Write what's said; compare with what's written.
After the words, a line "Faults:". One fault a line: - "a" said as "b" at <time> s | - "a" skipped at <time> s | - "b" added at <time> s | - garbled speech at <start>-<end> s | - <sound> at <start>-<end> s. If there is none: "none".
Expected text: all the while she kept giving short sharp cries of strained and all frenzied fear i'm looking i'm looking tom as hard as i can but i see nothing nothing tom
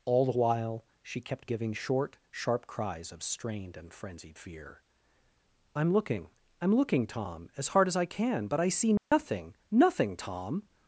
all the while she kept giving short sharp cries of strained and frenzied fear i'm looking i'm looking tom as hard as i can but i see nothing nothing tom
Faults:
- "all" skipped at 3.9 s
- dropout at 9.0-9.1 s